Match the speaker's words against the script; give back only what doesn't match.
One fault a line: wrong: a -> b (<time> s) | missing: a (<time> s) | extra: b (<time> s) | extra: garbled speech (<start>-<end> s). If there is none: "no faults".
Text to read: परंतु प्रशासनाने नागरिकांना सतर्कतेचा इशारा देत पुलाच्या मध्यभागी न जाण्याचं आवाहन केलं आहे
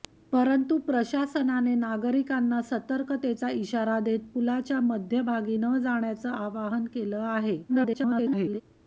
extra: garbled speech (7.7-8.6 s)